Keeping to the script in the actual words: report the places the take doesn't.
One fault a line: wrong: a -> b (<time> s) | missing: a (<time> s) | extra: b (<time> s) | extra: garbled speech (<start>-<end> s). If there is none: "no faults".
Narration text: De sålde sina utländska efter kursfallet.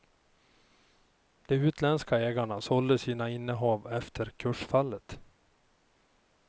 extra: utländska ägarna (1.6 s)
wrong: utländska -> innehav (3.3 s)